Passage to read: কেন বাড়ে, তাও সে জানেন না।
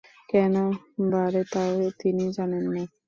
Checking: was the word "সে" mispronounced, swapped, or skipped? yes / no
yes